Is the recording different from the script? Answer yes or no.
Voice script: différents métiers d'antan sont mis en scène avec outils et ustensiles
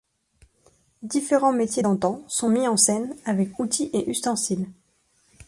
no